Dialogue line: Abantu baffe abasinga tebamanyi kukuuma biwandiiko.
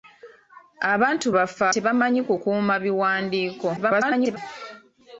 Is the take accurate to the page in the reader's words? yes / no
no